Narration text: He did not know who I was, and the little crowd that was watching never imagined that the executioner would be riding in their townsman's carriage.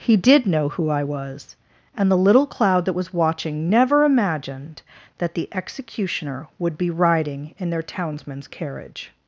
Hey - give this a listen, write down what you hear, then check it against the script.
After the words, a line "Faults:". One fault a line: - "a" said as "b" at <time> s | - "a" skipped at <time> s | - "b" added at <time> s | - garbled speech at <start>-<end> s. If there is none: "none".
He did know who I was, and the little cloud that was watching never imagined that the executioner would be riding in their townsman's carriage.
Faults:
- "not" skipped at 0.5 s
- "crowd" said as "cloud" at 2.5 s